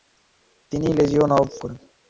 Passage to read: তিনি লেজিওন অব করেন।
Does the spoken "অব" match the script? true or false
true